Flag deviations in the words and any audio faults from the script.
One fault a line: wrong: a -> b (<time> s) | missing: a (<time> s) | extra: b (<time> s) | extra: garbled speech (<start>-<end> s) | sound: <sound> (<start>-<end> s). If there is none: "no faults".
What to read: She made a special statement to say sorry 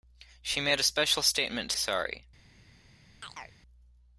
missing: say (1.8 s)
sound: chirp (3.2-3.6 s)